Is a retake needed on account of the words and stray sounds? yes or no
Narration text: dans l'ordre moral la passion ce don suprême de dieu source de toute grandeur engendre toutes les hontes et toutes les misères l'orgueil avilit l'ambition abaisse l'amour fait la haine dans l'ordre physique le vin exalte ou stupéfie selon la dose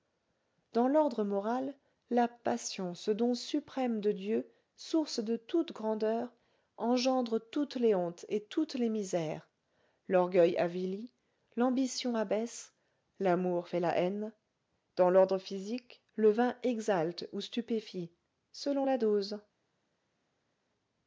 no